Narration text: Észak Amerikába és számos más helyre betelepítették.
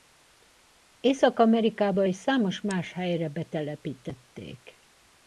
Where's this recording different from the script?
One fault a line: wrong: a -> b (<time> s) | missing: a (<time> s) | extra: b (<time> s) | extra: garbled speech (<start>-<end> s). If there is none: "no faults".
no faults